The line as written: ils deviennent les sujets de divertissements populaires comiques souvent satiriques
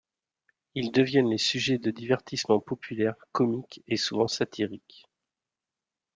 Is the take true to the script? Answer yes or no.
no